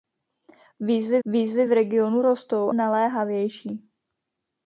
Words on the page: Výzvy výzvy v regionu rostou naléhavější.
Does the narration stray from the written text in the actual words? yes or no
no